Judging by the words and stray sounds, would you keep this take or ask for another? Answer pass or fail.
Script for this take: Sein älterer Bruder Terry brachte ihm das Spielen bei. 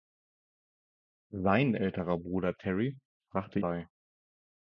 fail